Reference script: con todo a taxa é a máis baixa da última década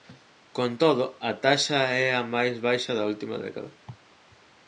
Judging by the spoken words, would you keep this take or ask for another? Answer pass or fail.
pass